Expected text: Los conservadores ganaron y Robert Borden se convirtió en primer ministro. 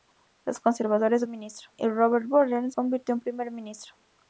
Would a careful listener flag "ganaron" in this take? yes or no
yes